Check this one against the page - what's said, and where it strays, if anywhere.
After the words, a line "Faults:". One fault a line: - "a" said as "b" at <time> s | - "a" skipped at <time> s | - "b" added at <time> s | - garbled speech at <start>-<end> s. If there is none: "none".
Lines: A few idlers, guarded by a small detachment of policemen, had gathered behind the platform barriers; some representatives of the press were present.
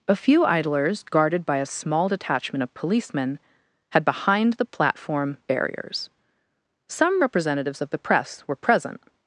A few idlers, guarded by a small detachment of policemen, had behind the platform barriers; some representatives of the press were present.
Faults:
- "gathered" skipped at 4.0 s